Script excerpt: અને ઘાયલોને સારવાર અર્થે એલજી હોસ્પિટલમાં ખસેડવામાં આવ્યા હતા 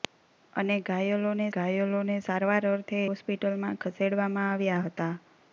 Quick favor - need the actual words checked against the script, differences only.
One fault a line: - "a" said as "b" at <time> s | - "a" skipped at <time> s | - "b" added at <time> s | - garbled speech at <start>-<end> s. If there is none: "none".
- "ઘાયલોને" added at 1.5 s
- "એલજી" skipped at 3.0 s